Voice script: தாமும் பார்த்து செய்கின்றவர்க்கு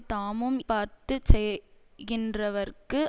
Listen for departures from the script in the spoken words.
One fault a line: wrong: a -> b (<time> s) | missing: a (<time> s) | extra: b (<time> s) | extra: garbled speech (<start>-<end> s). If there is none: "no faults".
no faults